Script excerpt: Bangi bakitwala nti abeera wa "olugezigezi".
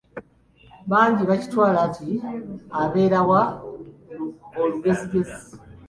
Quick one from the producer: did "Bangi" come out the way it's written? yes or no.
yes